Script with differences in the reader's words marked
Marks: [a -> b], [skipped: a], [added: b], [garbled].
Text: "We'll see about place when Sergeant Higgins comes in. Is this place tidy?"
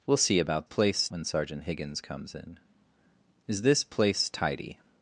"We'll see about place when Sergeant Higgins comes in. Is this place tidy?"